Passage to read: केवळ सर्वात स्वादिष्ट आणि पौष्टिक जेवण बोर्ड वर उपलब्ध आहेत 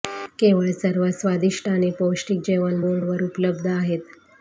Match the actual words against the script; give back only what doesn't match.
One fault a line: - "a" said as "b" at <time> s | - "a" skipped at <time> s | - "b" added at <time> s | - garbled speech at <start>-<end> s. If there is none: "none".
none